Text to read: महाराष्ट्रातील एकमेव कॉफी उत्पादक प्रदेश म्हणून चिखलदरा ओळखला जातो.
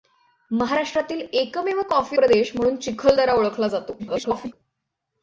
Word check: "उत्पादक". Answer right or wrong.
wrong